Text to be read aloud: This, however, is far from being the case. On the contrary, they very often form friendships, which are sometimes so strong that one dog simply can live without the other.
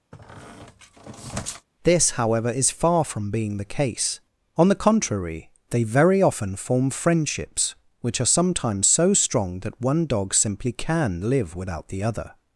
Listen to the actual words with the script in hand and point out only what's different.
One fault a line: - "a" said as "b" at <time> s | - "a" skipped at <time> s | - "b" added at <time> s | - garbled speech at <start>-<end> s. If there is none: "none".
none